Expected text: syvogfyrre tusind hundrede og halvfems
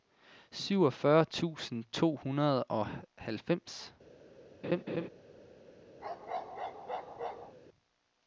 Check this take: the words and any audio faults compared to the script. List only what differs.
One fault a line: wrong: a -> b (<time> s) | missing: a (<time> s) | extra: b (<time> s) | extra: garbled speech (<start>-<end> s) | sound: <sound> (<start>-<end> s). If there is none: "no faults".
extra: to (1.9 s)
sound: laugh (4.6-5.1 s)
sound: bark (6.0-7.6 s)